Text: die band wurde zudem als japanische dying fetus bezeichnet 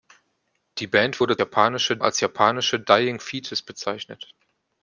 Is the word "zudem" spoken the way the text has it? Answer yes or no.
no